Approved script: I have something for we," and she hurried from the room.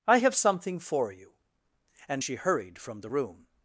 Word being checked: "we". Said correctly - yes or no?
no